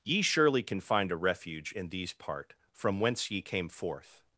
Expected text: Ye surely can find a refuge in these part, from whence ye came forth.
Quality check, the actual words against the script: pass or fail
pass